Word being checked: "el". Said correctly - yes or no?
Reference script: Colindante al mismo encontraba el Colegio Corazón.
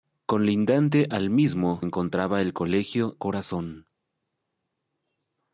yes